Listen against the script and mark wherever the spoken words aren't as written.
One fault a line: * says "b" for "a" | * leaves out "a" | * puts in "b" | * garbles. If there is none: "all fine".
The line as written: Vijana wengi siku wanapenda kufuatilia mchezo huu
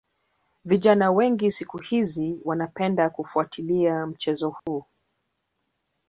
* puts in "hizi"